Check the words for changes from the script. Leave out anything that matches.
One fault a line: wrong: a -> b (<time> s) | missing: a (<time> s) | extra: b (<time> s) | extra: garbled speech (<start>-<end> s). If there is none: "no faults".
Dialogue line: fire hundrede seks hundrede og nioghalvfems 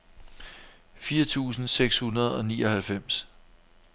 wrong: hundrede -> tusind (1.2 s)